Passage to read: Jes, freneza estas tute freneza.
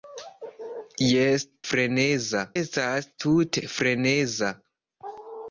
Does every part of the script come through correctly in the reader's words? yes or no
yes